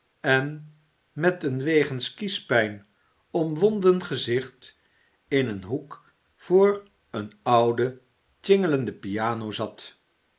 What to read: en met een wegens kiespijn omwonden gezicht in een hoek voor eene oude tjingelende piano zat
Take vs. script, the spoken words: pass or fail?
pass